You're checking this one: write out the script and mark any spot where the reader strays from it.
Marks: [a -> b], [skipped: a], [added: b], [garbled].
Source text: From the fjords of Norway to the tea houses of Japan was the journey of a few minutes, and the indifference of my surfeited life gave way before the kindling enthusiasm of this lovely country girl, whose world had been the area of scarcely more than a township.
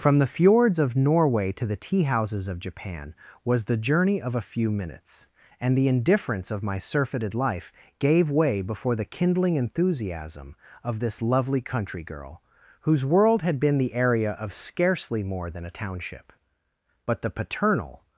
From the fjords of Norway to the tea houses of Japan was the journey of a few minutes, and the indifference of my surfeited life gave way before the kindling enthusiasm of this lovely country girl, whose world had been the area of scarcely more than a township. [added: But the paternal]